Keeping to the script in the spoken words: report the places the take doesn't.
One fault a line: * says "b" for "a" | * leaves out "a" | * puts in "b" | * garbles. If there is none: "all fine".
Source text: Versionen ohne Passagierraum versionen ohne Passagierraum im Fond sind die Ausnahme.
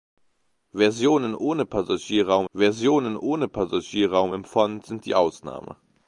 all fine